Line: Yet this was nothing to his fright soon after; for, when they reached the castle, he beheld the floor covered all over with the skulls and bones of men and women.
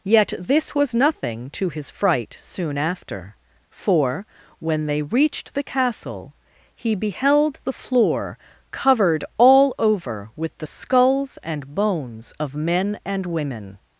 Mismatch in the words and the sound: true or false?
false